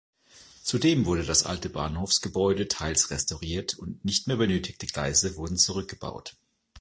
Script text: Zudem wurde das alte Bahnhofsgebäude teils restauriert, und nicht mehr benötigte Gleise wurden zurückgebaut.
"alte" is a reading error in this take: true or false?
false